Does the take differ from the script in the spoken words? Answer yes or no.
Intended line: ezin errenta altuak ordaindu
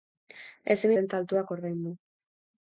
no